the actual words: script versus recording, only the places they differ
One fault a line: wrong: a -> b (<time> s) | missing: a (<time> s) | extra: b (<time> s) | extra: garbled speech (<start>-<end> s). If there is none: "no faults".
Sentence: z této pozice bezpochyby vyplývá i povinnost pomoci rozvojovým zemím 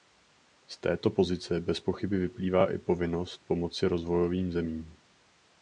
no faults